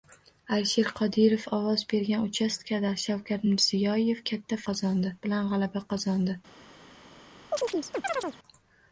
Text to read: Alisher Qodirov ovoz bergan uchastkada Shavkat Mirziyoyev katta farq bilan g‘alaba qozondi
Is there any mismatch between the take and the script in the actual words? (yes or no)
yes